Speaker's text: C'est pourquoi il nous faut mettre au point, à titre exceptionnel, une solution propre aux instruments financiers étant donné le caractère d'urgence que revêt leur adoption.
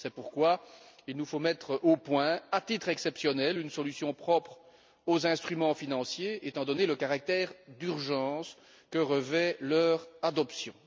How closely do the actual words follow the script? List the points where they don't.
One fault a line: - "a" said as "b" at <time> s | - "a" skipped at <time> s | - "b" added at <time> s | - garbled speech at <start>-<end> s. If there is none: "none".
none